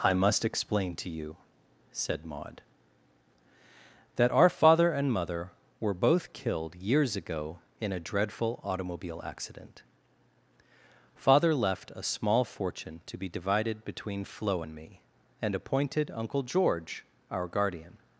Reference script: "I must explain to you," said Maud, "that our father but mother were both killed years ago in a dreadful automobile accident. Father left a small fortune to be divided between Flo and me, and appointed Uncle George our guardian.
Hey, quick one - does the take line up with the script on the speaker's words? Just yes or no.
no